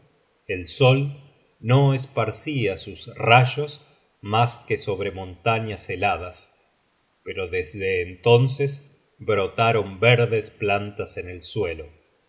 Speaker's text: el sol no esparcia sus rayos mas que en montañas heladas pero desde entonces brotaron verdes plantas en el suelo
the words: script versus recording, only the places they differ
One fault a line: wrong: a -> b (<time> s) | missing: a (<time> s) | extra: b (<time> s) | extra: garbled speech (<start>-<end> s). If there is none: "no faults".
wrong: en -> sobre (4.8 s)